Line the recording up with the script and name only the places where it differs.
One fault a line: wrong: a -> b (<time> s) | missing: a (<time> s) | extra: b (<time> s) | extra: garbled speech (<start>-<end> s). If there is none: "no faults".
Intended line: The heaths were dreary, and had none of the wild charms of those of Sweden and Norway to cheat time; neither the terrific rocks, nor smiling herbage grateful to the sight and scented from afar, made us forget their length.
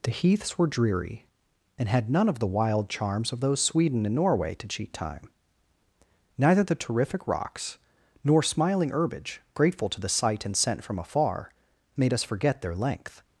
missing: of (3.6 s)
wrong: scented -> scent (10.6 s)